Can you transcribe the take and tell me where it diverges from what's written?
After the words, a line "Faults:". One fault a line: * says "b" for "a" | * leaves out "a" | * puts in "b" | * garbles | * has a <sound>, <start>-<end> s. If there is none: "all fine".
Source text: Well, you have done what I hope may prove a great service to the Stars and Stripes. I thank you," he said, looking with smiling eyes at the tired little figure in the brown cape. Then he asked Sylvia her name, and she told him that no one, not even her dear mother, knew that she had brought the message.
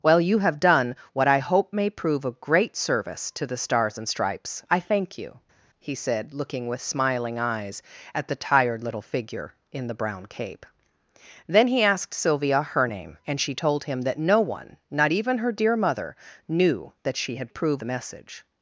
Well, you have done what I hope may prove a great service to the Stars and Stripes. I thank you," he said, looking with smiling eyes at the tired little figure in the brown cape. Then he asked Sylvia her name, and she told him that no one, not even her dear mother, knew that she had prove the message.
Faults:
* says "prove" for "brought"